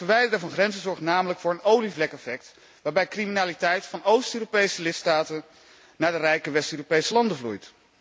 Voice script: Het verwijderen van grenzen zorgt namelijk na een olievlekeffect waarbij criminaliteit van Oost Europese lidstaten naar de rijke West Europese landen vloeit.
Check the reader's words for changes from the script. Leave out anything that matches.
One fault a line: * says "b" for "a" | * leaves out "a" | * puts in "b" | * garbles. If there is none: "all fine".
* says "voor" for "na"